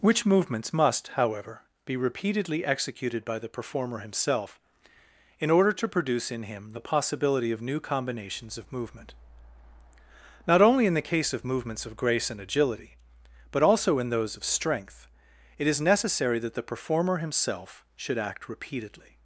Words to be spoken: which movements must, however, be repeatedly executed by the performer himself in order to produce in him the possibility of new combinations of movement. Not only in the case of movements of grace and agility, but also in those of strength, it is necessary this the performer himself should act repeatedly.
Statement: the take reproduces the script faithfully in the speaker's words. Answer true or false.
false